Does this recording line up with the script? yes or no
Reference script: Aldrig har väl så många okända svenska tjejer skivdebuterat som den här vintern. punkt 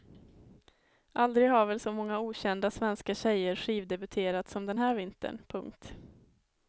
yes